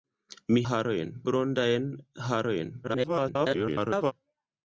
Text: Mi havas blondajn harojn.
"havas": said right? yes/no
no